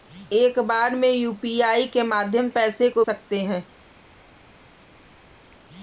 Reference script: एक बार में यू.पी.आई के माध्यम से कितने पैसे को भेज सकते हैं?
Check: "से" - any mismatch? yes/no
yes